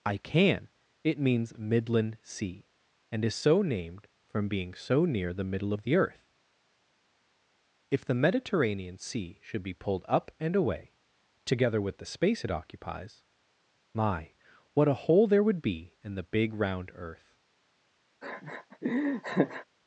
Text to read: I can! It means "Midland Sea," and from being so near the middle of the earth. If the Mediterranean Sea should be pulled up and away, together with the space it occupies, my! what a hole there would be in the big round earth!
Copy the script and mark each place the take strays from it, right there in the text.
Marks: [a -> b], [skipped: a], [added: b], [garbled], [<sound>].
I can! It means "Midland Sea," and [added: is so named] from being so near the middle of the earth. If the Mediterranean Sea should be pulled up and away, together with the space it occupies, my! what a hole there would be in the big round earth! [laugh]